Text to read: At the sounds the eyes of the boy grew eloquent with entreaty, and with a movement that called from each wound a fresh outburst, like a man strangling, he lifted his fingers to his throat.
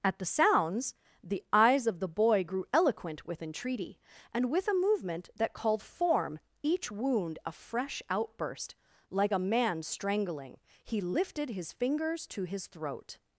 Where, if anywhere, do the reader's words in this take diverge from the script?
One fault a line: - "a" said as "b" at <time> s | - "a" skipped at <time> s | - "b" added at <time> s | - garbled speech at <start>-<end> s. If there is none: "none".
- "from" said as "form" at 5.8 s